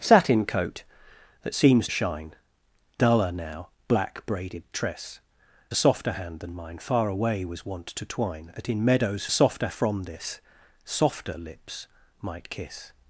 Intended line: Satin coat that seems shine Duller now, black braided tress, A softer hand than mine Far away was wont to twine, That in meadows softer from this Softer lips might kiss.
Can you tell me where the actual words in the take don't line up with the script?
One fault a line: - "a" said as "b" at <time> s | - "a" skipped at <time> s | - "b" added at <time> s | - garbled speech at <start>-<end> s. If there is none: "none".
none